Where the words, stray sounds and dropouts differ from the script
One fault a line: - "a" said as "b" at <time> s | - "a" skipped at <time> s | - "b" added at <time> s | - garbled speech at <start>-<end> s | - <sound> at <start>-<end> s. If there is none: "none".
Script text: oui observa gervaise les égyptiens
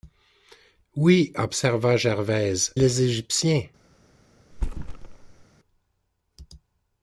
- thud at 4.5-5.4 s